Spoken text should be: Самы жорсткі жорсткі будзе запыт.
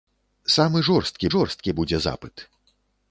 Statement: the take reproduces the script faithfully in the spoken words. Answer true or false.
true